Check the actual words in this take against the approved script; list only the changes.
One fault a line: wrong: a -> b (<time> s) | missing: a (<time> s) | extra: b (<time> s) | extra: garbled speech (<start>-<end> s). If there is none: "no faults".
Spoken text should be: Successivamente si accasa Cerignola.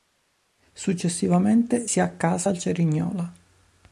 extra: al (2.5 s)